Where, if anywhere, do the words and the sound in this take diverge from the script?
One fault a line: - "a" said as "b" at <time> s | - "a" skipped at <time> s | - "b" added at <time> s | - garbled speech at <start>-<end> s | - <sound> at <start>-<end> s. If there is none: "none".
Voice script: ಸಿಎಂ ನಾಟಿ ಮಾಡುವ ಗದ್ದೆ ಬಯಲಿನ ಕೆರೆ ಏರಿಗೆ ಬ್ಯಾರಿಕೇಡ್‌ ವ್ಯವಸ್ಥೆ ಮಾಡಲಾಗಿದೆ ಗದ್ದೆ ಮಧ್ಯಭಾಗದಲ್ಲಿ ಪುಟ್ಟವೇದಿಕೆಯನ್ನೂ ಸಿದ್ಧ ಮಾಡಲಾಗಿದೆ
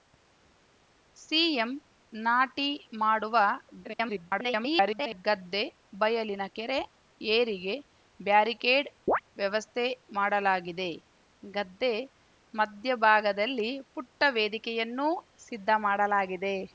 - garbled speech at 3.8-5.2 s
- chirp at 9.1-9.2 s